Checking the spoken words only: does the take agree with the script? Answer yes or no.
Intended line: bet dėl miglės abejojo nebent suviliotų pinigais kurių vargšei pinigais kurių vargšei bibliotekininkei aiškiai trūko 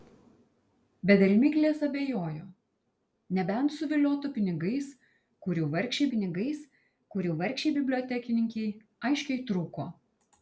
yes